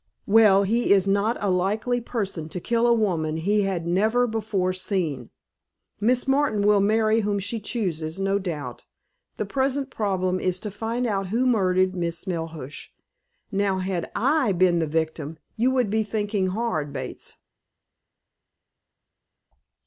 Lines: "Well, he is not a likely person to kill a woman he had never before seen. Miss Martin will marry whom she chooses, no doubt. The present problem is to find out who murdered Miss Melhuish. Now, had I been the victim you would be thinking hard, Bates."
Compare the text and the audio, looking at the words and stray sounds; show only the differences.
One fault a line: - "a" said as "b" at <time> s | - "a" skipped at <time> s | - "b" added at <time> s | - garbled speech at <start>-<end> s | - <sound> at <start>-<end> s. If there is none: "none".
none